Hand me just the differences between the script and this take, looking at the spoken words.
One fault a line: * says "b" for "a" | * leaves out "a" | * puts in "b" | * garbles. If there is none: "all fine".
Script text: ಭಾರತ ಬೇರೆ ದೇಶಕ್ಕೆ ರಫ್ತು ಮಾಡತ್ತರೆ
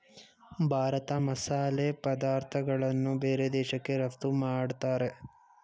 * puts in "ಮಸಾಲೆ ಪದಾರ್ಥಗಳನ್ನು"